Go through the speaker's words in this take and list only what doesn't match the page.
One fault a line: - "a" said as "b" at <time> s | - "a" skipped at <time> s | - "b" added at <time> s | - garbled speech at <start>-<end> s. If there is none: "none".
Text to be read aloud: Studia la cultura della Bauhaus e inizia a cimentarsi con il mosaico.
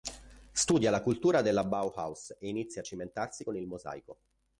none